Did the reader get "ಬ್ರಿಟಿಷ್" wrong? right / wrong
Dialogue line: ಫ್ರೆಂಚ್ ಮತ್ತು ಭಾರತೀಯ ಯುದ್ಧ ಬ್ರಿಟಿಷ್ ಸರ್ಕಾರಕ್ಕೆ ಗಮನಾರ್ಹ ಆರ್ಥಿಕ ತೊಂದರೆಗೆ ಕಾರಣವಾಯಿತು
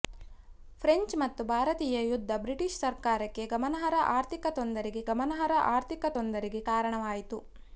right